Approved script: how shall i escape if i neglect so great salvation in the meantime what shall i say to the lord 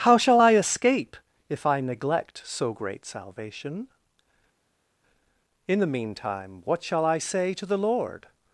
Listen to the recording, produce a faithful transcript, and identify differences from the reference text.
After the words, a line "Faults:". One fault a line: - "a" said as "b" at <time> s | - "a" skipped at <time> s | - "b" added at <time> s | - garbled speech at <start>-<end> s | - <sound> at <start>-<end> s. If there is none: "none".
how shall i escape if i neglect so great salvation in the meantime what shall i say to the lord
Faults:
none